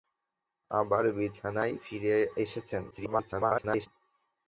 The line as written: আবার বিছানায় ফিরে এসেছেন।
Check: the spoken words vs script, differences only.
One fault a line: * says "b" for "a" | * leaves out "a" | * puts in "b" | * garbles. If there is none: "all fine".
* garbles